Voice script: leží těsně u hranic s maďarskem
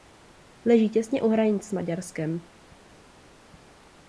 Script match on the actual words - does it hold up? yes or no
yes